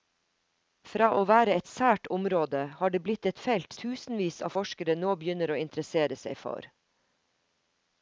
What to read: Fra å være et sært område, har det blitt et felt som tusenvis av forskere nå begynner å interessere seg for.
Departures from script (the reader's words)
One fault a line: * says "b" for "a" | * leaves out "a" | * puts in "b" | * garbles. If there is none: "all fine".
* leaves out "som"